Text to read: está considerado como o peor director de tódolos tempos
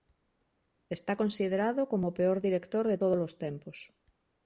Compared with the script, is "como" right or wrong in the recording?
right